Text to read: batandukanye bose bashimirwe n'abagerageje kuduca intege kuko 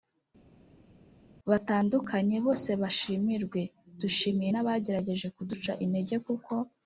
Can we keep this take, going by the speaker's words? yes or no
no